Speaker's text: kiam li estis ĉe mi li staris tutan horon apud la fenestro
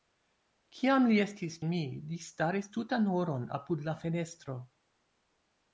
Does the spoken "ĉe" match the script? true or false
false